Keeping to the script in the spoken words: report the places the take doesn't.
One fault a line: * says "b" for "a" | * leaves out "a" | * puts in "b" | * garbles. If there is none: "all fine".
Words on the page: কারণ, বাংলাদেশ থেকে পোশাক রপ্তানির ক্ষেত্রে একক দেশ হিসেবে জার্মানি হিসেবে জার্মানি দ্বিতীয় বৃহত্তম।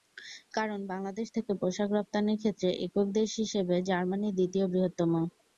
* leaves out "হিসেবে জার্মানি"